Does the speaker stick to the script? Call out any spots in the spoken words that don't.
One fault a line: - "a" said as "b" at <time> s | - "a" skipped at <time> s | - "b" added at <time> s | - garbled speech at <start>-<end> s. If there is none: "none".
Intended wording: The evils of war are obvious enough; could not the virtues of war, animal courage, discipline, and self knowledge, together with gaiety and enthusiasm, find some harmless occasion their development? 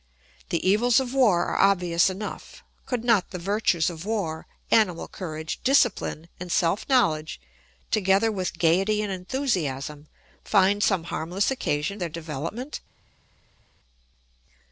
none